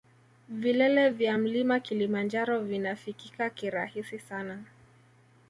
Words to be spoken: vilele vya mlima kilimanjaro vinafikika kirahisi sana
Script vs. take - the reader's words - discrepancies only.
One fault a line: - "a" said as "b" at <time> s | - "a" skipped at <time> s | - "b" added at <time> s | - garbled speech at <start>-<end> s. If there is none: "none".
none